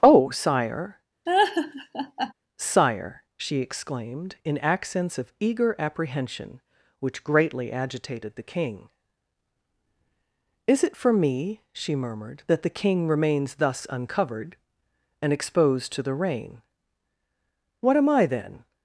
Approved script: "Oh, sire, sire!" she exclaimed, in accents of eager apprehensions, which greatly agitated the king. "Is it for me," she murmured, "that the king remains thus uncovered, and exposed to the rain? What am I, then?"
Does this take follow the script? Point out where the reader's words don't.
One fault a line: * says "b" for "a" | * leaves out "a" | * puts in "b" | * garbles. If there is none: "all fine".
* says "apprehension" for "apprehensions"